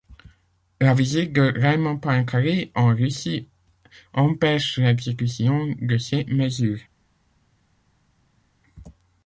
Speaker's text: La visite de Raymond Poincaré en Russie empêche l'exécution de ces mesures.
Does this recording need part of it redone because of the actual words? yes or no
no